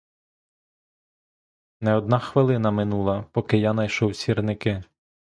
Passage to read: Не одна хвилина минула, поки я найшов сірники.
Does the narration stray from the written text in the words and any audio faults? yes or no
no